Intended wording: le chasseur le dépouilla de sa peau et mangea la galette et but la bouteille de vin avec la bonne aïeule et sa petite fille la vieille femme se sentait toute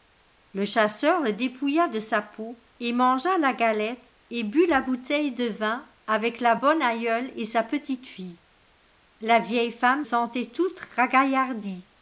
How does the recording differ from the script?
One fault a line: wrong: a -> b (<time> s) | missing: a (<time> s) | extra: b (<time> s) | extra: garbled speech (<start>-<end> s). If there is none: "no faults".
missing: se (10.1 s)